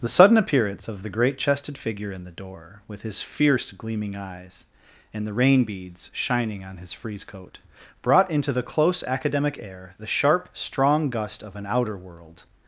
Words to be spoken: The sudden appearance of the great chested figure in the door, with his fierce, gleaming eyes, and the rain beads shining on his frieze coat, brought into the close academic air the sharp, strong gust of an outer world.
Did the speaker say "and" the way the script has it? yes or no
yes